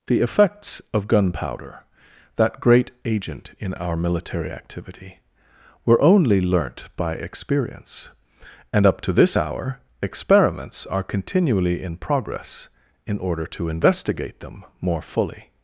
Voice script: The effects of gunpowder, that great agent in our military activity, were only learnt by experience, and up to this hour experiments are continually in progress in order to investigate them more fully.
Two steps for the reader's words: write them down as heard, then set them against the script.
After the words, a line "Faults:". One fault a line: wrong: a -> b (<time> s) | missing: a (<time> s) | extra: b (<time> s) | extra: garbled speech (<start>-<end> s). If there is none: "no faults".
The effects of gunpowder, that great agent in our military activity, were only learnt by experience, and up to this hour experiments are continually in progress in order to investigate them more fully.
Faults:
no faults